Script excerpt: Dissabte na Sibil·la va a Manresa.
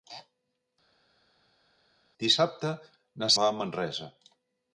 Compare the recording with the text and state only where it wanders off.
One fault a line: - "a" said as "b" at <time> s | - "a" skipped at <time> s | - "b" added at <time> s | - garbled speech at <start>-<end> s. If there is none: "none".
- "Sibil·la" skipped at 3.3 s